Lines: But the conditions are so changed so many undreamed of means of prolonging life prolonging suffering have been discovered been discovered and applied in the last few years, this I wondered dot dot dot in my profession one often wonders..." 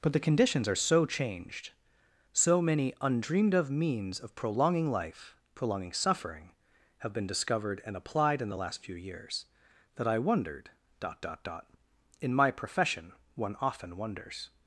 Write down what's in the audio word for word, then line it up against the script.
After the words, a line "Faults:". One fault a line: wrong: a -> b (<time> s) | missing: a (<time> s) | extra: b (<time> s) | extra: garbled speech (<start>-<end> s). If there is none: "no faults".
But the conditions are so changed so many undreamed of means of prolonging life prolonging suffering have been discovered and applied in the last few years, that I wondered dot dot dot in my profession one often wonders..."
Faults:
missing: been discovered (7.8 s)
wrong: this -> that (9.9 s)